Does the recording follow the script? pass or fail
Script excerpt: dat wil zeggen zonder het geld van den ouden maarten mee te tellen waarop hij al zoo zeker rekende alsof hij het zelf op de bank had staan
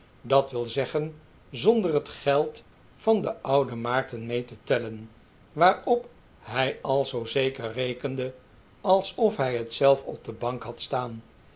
pass